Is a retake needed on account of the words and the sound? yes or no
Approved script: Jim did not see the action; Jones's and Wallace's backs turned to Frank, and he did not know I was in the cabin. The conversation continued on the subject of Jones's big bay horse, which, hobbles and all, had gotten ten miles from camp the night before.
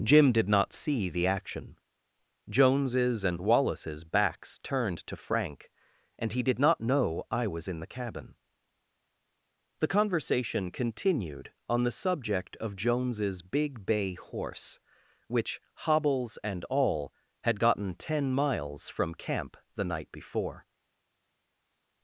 no